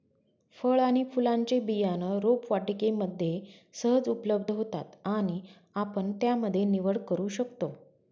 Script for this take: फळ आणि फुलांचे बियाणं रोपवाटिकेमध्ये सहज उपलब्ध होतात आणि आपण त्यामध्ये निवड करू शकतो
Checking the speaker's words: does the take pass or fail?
pass